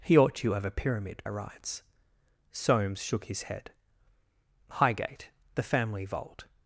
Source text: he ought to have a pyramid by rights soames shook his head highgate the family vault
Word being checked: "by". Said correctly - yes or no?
no